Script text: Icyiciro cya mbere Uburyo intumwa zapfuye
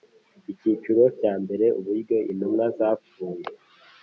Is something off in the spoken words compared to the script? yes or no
no